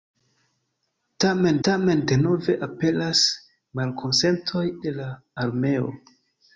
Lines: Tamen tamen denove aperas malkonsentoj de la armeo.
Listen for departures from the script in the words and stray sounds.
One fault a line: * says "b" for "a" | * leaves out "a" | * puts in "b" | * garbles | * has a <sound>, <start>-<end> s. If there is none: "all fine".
all fine